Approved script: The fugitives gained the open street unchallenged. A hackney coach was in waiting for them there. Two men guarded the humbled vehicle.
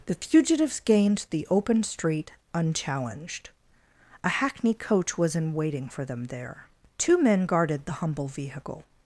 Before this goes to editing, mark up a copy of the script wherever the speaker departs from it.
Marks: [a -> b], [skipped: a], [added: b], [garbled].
The fugitives gained the open street unchallenged. A hackney coach was in waiting for them there. Two men guarded the [humbled -> humble] vehicle.